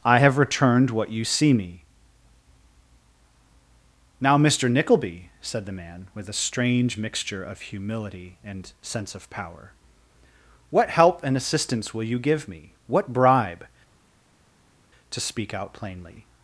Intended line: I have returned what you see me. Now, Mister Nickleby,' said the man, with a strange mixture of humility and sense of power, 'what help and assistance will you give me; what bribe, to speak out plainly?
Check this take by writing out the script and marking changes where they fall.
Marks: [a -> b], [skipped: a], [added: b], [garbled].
I have returned what you see me. Now, Mister Nickleby,' said the man, with a strange mixture of humility and sense of power, 'what help and assistance will you give me; what bribe, to speak out plainly?